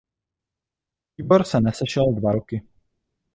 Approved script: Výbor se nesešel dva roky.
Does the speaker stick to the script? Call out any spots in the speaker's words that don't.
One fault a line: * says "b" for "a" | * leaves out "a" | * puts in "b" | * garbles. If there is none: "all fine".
all fine